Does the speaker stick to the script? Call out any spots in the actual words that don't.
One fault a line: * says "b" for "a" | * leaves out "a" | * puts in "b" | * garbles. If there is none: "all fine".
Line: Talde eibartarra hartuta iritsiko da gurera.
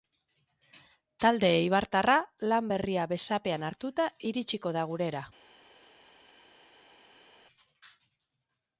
* puts in "lan berria besapean"